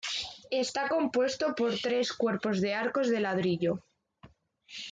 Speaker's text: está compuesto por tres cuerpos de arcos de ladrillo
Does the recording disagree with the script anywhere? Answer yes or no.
no